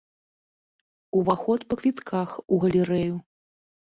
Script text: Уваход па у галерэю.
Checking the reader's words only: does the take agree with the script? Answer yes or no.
no